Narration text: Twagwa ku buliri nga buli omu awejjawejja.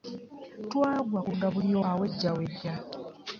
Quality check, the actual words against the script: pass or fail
fail